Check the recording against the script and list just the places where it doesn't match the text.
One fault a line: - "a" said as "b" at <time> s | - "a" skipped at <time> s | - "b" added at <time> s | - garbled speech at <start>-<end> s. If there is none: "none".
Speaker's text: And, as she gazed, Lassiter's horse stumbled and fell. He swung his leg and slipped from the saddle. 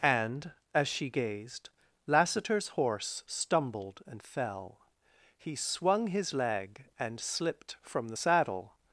none